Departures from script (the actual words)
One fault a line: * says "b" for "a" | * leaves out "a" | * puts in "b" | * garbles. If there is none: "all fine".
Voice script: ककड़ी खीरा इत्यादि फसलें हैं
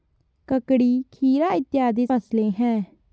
all fine